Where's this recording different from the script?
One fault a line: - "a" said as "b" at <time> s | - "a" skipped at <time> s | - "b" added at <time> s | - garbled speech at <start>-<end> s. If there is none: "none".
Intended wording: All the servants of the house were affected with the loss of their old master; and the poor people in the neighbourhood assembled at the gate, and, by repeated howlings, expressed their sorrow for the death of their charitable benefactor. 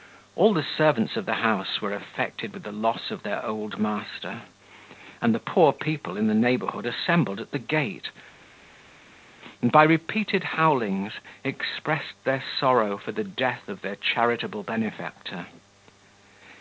none